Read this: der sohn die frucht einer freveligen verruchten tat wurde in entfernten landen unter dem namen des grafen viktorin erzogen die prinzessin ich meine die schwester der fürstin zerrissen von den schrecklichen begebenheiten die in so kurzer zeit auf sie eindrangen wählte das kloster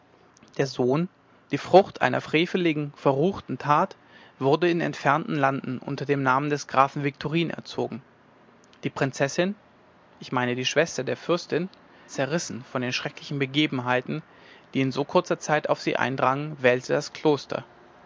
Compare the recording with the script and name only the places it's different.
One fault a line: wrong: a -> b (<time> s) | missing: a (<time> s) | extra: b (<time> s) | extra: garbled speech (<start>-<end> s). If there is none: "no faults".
no faults